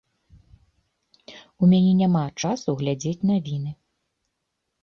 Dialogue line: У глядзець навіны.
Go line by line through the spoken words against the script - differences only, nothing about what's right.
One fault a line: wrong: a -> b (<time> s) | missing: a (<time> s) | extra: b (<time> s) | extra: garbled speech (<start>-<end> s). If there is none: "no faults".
extra: мяне няма часу (1.7 s)